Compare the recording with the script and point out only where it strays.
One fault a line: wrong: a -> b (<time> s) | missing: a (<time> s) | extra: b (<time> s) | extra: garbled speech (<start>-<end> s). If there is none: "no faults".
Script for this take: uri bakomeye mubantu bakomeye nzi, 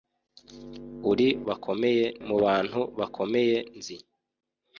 no faults